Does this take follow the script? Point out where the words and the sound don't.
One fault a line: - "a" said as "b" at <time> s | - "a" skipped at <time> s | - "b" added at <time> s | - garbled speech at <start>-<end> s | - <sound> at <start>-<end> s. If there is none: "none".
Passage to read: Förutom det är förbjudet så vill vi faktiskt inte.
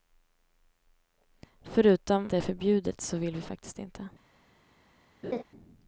- laugh at 5.2-5.4 s